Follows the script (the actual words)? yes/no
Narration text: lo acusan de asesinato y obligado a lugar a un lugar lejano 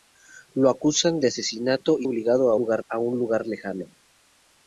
yes